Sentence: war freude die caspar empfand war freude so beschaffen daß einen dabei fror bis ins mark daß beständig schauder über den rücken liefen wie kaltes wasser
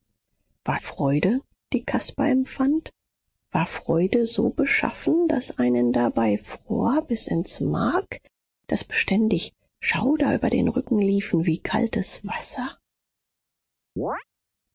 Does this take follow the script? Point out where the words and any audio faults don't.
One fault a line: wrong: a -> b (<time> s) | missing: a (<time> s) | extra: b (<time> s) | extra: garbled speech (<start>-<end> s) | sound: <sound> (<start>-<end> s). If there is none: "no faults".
sound: chirp (14.0-14.2 s)